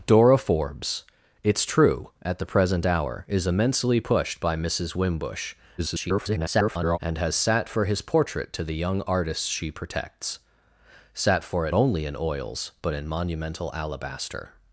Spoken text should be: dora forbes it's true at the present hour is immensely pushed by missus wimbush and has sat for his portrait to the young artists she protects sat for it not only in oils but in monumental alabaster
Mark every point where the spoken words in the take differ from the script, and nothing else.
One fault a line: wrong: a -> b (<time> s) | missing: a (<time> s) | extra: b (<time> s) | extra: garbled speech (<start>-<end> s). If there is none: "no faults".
extra: garbled speech (5.8-7.0 s)
missing: not (11.7 s)